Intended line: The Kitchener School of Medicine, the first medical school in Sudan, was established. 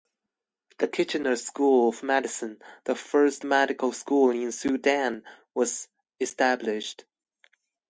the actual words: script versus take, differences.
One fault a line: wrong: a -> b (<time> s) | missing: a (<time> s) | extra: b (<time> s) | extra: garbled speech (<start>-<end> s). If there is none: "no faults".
no faults